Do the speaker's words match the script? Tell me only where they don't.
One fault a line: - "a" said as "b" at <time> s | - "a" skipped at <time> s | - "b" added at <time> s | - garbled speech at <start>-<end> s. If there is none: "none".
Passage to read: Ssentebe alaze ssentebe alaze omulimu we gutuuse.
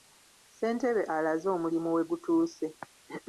- "ssentebe alaze" skipped at 1.5 s